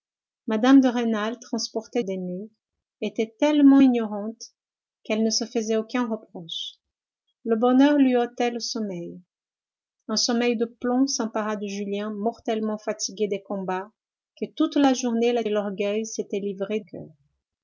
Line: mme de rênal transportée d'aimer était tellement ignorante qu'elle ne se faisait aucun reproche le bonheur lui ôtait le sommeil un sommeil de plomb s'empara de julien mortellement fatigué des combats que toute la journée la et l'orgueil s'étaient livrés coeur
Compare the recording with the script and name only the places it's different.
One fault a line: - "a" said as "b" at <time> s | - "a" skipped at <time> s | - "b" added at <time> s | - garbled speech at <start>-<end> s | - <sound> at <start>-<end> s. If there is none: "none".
none